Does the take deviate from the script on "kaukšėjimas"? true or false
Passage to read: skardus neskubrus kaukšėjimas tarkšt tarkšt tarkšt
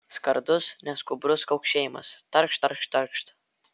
false